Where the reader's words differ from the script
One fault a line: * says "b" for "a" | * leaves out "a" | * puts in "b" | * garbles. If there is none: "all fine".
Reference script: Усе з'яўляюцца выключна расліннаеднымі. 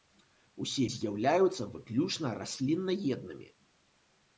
all fine